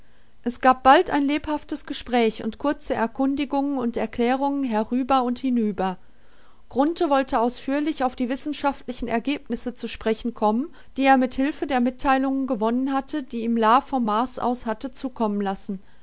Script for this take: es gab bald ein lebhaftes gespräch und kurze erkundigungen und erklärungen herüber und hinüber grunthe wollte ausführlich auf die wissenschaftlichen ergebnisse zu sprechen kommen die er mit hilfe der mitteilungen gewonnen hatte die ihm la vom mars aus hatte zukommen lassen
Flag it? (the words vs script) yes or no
no